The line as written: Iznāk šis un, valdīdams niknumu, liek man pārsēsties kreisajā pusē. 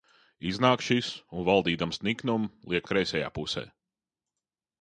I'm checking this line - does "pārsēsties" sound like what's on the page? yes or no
no